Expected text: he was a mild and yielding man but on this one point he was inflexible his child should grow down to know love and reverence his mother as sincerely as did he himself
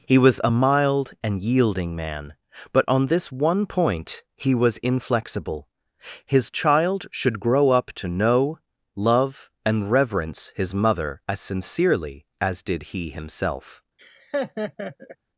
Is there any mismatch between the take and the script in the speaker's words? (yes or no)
yes